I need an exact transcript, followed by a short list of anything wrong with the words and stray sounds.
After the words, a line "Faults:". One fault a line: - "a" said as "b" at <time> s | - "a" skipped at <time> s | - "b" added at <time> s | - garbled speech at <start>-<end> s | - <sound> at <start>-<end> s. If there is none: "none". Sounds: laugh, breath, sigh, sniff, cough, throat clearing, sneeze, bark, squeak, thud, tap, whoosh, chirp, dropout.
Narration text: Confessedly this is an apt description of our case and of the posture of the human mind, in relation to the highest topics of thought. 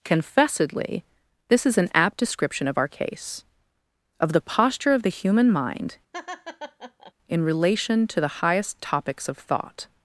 Confessedly this is an apt description of our case of the posture of the human mind, in relation to the highest topics of thought.
Faults:
- "and" skipped at 3.5 s
- laugh at 6.1-7.1 s